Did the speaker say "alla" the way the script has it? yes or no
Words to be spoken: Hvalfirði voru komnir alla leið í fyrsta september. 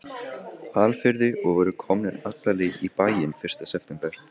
yes